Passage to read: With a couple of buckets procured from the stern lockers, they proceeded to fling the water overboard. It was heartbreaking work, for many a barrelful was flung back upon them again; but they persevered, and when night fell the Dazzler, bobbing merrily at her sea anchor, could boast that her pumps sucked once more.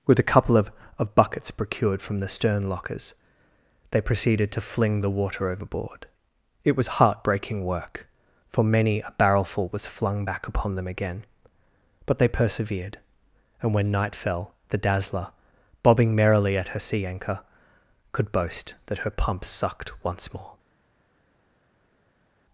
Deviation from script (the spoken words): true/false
true